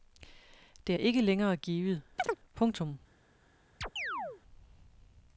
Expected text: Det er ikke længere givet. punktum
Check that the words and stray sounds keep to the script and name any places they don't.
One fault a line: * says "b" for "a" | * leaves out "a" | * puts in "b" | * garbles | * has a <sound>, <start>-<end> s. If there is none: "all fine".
* has a chirp, 2.2-2.4 s
* has a chirp, 3.8-4.4 s